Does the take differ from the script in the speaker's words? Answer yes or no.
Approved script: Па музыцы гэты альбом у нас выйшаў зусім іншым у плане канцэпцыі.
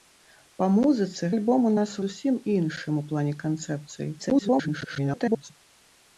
yes